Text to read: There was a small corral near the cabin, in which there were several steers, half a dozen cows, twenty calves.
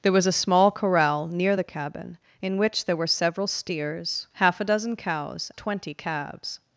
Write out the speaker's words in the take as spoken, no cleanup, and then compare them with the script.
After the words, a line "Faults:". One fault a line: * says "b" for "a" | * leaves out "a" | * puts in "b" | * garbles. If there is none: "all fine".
There was a small corral near the cabin, in which there were several steers, half a dozen cows, twenty calves.
Faults:
all fine